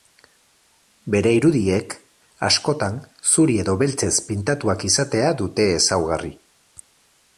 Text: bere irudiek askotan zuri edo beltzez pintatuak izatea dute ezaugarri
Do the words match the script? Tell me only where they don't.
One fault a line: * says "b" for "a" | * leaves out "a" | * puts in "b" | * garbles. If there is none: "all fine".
all fine